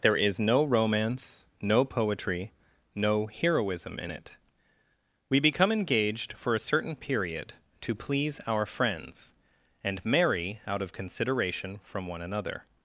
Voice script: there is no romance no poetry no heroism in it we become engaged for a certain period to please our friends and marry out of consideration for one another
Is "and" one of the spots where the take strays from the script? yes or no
no